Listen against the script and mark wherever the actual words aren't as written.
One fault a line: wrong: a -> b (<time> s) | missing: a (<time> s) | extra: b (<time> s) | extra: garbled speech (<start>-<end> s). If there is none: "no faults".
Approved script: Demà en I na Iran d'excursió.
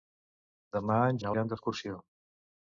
no faults